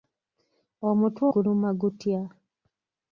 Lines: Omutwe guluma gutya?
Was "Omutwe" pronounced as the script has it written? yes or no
yes